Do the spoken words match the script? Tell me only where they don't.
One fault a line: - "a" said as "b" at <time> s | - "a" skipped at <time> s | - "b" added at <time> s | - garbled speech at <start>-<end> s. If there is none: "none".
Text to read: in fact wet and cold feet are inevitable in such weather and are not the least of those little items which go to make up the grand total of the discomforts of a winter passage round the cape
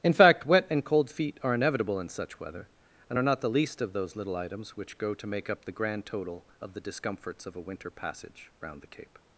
none